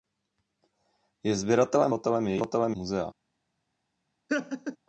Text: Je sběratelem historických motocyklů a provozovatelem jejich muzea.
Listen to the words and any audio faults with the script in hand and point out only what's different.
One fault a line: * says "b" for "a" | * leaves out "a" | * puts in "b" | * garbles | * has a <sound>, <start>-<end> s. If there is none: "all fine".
* leaves out "historických motocyklů"
* leaves out "jejich"
* has a laugh, 4.3-4.8 s